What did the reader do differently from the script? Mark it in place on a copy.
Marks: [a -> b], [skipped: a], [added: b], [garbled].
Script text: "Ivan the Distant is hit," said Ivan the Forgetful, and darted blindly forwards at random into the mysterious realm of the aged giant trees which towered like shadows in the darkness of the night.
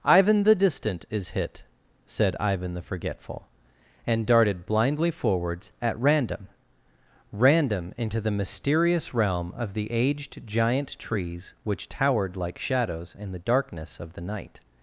"Ivan the Distant is hit," said Ivan the Forgetful, and darted blindly forwards at random [added: random] into the mysterious realm of the aged giant trees which towered like shadows in the darkness of the night.